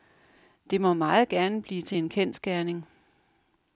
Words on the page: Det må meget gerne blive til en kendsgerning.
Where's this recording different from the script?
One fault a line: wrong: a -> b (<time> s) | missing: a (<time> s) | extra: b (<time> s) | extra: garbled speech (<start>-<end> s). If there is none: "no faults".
no faults